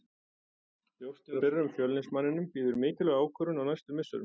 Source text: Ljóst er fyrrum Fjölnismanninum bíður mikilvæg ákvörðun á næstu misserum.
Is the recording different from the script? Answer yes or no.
no